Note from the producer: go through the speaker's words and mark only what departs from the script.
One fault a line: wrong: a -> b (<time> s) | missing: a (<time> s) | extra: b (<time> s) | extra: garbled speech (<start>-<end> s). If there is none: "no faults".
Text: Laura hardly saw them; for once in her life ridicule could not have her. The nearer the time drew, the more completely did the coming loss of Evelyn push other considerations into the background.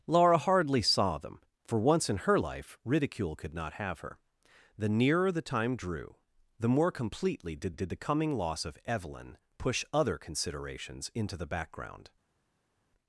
extra: did (7.7 s)